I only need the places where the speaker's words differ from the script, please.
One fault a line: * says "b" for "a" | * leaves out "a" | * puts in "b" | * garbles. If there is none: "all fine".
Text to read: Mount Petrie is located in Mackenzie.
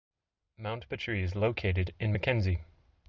all fine